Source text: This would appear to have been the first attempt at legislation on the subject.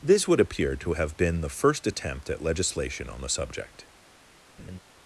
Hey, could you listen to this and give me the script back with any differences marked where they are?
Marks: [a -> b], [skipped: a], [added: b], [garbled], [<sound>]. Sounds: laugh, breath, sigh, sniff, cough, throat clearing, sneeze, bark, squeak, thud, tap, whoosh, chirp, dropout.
This would appear to have been the first attempt at legislation on the subject. [laugh]